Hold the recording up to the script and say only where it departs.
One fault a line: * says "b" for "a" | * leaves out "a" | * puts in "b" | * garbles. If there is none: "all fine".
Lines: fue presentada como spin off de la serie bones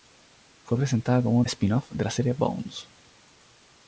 all fine